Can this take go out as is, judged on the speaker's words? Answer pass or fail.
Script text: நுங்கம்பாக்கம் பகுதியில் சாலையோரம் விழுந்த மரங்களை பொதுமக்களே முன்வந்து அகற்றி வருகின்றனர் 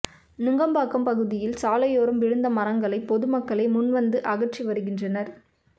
pass